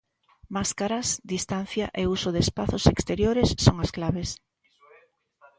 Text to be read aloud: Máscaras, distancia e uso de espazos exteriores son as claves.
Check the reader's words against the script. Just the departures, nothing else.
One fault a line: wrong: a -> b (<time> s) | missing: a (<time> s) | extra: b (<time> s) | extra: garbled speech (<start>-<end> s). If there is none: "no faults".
no faults